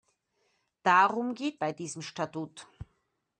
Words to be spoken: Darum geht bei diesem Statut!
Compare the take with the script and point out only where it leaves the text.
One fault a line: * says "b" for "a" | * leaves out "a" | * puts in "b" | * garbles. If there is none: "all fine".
all fine